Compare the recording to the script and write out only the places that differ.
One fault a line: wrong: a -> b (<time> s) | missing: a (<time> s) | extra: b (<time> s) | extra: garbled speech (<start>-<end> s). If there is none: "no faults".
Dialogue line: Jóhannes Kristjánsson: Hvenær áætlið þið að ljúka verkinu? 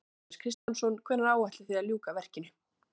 no faults